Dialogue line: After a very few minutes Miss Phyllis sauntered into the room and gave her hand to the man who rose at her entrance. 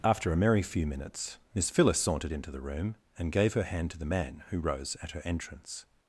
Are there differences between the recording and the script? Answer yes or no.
yes